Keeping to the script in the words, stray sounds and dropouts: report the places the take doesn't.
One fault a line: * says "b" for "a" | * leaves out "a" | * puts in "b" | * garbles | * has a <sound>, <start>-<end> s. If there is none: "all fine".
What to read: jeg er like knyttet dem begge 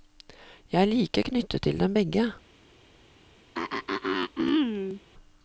* puts in "til"
* has a throat clearing, 3.5-5.0 s